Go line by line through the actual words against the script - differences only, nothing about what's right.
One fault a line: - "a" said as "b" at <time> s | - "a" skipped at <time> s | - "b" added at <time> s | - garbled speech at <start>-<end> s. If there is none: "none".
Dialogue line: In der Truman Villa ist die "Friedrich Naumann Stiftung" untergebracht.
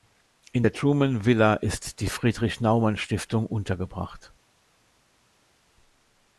none